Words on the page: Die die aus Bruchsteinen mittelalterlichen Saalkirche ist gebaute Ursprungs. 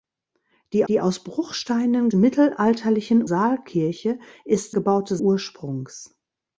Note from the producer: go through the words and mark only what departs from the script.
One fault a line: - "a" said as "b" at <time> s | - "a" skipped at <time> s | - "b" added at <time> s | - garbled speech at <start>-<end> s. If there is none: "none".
none